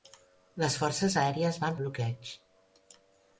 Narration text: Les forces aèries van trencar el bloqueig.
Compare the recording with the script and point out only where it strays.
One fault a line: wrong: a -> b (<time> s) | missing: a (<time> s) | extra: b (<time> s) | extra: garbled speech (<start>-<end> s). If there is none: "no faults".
missing: trencar (1.8 s)